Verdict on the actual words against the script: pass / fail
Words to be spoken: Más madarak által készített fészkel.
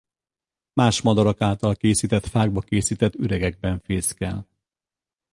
fail